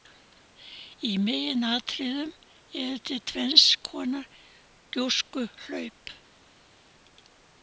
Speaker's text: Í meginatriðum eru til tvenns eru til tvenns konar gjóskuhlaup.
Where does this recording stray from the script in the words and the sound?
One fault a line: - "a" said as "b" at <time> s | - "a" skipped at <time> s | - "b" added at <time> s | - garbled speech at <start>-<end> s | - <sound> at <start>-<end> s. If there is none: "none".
- "eru til tvenns" skipped at 3.7 s